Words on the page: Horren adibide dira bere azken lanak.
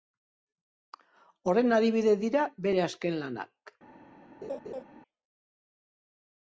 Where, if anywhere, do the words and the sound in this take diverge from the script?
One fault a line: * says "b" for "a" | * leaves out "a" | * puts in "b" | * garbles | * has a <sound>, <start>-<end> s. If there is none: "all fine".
* has a laugh, 4.4-4.8 s